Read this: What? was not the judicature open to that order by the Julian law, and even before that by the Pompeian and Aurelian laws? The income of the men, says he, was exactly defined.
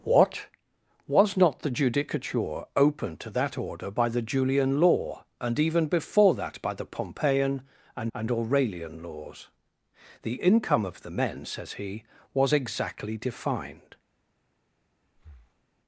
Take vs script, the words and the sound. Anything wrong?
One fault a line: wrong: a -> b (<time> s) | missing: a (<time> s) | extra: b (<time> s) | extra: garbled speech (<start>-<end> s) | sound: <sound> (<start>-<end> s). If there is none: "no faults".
extra: and (8.1 s)
sound: breath (15.1-15.6 s)